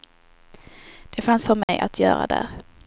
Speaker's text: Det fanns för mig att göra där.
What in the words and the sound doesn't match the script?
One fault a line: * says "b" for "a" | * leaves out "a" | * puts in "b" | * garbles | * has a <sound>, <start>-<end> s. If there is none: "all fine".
* has a dropout, 1.6-1.7 s